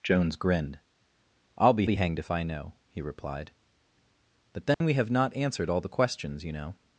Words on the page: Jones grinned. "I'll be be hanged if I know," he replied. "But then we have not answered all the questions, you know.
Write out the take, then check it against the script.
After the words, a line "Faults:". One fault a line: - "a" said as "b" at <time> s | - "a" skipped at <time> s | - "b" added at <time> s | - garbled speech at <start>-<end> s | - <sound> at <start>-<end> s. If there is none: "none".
Jones grinned. "I'll be be hanged if I know," he replied. "But then we have not answered all the questions, you know.
Faults:
- dropout at 4.7-4.8 s